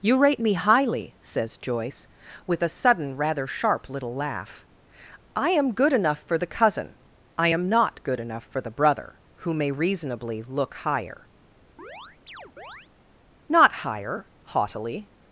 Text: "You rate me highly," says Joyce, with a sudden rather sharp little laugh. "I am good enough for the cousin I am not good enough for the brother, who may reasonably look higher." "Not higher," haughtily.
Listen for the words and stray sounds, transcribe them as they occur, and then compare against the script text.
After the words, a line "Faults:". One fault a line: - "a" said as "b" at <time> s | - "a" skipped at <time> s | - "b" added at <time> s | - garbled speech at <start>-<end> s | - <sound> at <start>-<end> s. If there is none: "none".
"You rate me highly," says Joyce, with a sudden rather sharp little laugh. "I am good enough for the cousin I am not good enough for the brother, who may reasonably look higher." "Not higher," haughtily.
Faults:
- chirp at 11.8-12.9 s